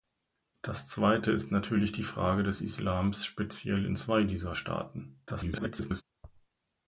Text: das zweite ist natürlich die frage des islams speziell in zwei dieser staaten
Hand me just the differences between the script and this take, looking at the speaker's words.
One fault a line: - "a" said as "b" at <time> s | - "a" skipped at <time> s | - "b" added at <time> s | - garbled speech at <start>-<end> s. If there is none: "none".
- garbled speech at 5.3-6.0 s